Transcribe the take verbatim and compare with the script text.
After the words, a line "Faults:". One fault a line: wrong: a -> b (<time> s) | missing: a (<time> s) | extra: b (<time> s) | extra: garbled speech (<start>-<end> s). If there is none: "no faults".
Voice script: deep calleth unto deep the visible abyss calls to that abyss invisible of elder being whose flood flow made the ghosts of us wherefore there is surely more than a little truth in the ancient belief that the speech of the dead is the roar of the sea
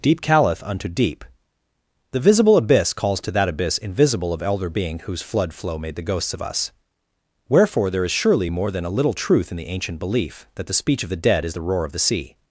deep calleth unto deep the visible abyss calls to that abyss invisible of elder being whose flood flow made the ghosts of us wherefore there is surely more than a little truth in the ancient belief that the speech of the dead is the roar of the sea
Faults:
no faults